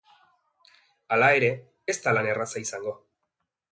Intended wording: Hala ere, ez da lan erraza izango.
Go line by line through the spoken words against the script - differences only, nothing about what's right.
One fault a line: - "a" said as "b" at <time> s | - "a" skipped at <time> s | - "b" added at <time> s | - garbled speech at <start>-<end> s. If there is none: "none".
none